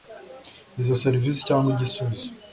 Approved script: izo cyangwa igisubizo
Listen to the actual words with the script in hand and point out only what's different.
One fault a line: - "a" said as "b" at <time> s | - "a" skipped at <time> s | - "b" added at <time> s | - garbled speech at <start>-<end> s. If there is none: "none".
- "serivisi" added at 1.0 s